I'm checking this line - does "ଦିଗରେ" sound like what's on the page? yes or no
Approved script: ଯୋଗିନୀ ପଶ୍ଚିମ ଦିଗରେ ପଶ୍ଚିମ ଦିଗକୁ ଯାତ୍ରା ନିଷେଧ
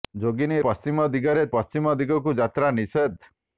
yes